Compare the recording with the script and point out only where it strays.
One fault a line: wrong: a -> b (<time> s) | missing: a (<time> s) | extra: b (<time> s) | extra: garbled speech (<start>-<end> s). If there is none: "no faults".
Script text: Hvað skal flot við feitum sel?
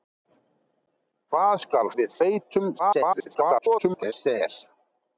missing: flot (1.9 s)
extra: garbled speech (2.8-4.1 s)